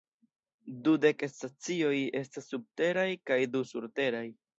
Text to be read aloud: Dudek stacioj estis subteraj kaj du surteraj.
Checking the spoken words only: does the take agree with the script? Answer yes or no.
no